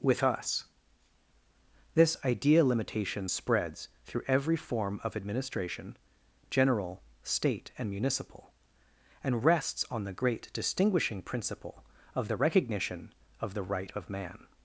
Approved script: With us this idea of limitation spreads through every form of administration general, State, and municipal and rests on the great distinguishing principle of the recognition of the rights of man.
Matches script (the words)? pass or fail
fail